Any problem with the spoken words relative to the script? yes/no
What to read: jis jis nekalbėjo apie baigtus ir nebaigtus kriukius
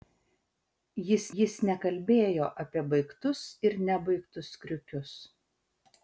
no